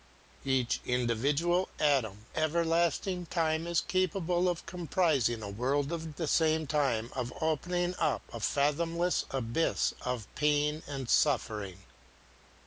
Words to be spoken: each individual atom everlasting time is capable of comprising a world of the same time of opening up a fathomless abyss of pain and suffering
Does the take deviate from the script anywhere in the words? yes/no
no